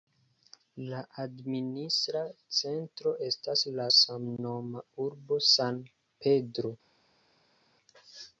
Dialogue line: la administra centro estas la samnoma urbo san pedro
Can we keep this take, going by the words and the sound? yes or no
yes